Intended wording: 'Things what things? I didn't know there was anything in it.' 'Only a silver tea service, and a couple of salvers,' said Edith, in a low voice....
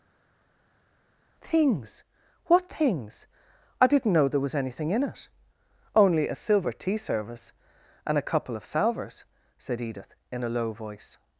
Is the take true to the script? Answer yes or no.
yes